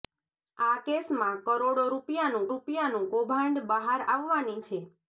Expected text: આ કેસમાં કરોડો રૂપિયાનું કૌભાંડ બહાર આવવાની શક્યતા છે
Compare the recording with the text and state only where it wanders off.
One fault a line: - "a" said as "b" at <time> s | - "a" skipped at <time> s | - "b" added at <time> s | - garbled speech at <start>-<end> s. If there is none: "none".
- "રૂપિયાનું" added at 2.5 s
- "શક્યતા" skipped at 4.6 s